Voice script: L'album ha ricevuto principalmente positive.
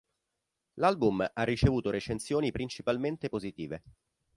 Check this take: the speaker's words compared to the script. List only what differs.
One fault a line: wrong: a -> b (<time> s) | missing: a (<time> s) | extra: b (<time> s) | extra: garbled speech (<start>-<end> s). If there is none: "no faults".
extra: recensioni (1.9 s)